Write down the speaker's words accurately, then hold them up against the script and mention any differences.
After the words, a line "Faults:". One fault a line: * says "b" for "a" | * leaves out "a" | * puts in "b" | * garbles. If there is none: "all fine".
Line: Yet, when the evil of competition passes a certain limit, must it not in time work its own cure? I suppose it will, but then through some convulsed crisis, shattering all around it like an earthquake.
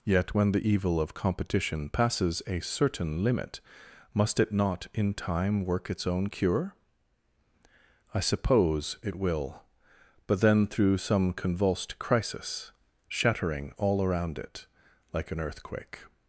Yet, when the evil of competition passes a certain limit, must it not in time work its own cure? I suppose it will, but then through some convulsed crisis, shattering all around it like an earthquake.
Faults:
all fine